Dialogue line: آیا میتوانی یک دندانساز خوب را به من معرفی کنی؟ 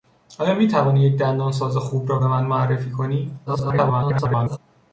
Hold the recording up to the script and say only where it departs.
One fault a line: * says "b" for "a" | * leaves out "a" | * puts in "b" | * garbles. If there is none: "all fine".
* garbles